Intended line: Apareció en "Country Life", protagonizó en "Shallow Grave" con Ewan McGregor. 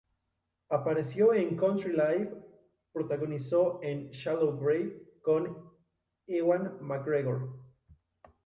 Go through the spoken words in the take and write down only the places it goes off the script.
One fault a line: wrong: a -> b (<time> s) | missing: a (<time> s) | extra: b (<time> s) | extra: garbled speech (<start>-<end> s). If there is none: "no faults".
no faults